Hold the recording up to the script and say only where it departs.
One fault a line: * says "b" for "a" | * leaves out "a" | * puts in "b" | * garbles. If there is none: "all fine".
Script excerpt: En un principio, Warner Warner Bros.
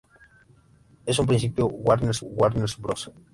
all fine